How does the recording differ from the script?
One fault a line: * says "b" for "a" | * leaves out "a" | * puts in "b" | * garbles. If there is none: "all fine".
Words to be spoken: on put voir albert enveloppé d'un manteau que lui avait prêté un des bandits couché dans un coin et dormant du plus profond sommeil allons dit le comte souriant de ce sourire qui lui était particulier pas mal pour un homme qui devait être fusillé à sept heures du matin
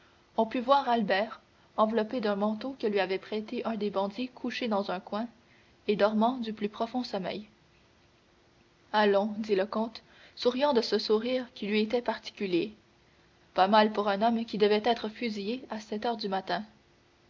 all fine